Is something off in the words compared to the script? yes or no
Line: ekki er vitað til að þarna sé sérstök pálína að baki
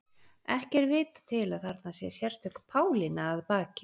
no